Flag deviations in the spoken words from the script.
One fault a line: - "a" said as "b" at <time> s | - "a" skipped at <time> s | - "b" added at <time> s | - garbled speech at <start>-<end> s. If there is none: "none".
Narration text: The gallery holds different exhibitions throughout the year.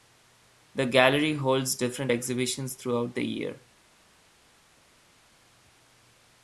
none